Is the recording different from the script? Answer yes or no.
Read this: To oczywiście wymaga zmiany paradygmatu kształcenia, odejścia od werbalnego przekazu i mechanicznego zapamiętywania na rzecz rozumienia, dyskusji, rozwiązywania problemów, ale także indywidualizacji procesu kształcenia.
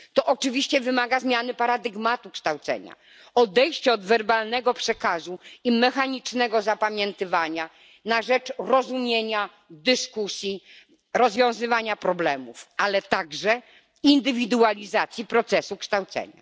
no